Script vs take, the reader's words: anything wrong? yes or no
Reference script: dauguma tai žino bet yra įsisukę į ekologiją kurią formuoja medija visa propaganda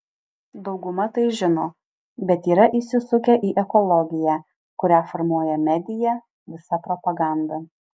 no